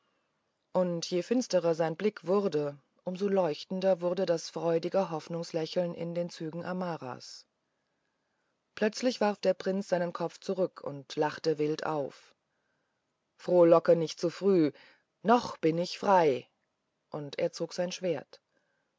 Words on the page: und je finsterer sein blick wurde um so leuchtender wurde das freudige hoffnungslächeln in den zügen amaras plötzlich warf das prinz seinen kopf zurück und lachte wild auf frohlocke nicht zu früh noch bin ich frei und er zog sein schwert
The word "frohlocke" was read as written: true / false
true